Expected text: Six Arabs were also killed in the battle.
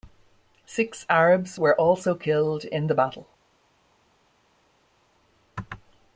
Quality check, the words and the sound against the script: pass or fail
pass